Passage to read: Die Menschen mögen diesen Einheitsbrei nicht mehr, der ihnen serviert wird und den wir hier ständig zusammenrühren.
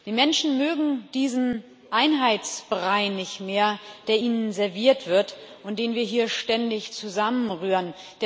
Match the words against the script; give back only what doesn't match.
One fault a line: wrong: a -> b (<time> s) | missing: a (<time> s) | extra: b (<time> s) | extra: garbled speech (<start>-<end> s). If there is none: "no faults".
no faults